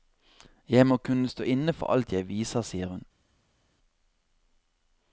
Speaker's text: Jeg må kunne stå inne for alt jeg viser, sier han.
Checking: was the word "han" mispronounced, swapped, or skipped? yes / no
yes